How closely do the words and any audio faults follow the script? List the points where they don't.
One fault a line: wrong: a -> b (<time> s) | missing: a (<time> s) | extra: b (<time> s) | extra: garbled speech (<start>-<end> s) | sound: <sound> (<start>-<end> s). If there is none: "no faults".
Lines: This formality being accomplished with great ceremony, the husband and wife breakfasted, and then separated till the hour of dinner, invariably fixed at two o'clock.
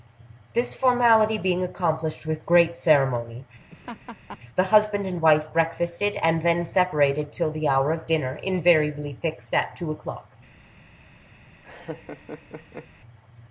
sound: laugh (3.7-4.4 s)
sound: laugh (11.6-12.9 s)